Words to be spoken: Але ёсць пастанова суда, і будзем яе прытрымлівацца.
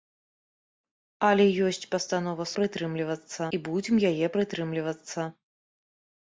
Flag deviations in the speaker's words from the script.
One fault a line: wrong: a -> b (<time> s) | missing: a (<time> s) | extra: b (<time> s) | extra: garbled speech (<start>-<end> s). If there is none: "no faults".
wrong: суда -> прытрымлівацца (2.6 s)